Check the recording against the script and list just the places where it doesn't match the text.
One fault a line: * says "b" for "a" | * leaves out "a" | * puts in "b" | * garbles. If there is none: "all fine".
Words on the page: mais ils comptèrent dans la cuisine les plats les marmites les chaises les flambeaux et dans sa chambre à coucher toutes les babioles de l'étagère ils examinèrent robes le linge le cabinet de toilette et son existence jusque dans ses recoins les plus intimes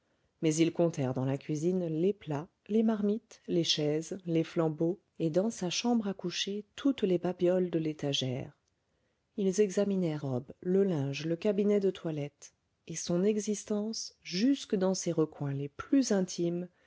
all fine